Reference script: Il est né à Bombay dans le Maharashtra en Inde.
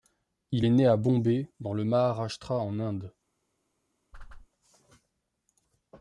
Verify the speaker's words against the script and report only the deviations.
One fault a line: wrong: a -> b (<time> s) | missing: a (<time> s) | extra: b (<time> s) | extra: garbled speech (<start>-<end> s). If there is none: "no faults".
no faults